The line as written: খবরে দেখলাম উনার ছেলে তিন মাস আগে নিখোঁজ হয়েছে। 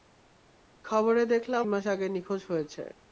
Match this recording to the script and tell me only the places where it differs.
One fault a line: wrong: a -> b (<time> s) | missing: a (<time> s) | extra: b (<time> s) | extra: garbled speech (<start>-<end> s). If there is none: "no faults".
missing: উনার ছেলে তিন (1.6 s)